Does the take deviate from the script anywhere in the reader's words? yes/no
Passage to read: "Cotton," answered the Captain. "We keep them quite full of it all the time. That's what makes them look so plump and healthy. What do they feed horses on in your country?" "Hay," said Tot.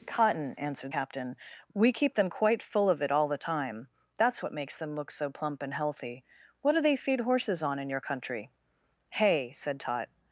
yes